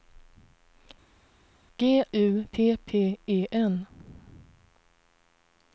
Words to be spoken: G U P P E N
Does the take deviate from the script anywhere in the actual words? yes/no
no